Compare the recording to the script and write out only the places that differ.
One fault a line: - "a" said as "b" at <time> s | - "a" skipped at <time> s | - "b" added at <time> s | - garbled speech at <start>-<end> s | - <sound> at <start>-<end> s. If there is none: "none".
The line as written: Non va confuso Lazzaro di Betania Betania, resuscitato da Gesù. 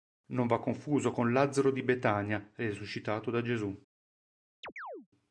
- "con" added at 1.1 s
- "Betania" skipped at 2.5 s
- chirp at 4.6-5.1 s